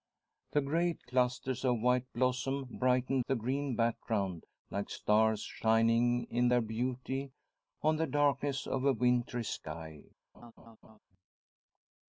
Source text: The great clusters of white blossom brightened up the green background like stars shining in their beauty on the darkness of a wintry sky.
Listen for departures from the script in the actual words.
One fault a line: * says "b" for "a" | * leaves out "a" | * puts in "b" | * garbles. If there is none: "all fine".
* leaves out "up"